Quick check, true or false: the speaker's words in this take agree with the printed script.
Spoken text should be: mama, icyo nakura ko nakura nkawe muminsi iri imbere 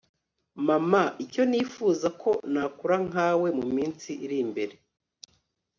false